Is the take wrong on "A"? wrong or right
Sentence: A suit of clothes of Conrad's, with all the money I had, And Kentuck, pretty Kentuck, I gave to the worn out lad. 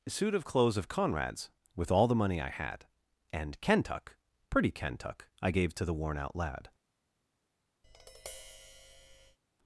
wrong